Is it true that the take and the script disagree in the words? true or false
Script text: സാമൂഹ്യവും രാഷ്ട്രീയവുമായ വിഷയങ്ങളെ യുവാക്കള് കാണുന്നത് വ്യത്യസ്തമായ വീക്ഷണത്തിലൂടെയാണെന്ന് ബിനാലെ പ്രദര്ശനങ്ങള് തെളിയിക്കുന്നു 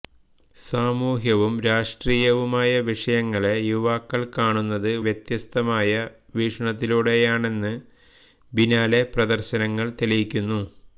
false